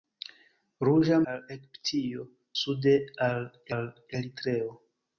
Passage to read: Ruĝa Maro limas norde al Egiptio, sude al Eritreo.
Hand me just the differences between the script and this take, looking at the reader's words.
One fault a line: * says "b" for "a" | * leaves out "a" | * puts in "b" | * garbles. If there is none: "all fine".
* leaves out "Maro limas norde"
* puts in "al"